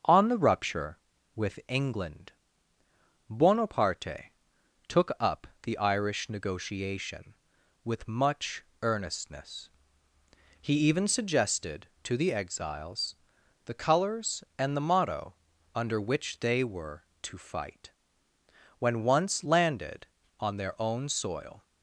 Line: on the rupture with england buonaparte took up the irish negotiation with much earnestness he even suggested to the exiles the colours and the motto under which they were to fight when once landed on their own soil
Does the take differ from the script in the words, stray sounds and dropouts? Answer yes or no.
no